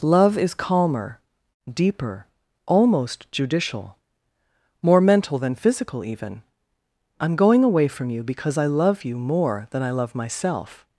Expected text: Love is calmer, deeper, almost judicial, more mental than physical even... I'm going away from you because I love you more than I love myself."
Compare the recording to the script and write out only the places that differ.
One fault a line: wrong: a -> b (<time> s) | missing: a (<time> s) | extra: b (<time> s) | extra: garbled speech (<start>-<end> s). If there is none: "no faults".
no faults